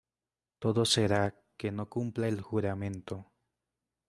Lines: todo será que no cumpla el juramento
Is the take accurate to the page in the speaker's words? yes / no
yes